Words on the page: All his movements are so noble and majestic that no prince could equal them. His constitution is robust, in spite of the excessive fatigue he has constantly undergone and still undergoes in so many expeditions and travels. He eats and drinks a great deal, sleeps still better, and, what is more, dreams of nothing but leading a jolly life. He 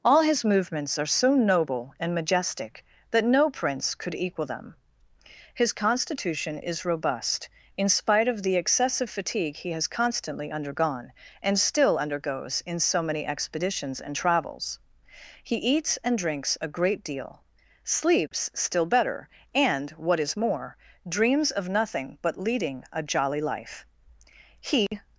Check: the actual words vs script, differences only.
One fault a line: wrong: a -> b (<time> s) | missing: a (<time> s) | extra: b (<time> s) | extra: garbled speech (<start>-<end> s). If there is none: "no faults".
no faults